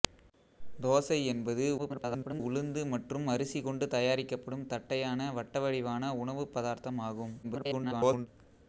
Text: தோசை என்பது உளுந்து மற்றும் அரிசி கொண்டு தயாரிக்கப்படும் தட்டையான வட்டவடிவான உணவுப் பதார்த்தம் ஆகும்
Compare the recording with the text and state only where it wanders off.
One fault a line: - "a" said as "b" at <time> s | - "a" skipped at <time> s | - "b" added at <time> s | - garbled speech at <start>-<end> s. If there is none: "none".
- garbled speech at 1.8-2.4 s
- garbled speech at 7.4-8.3 s